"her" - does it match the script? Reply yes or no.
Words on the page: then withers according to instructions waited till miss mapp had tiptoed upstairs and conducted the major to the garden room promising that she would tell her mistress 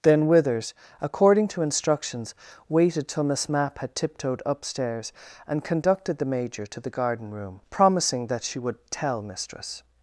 no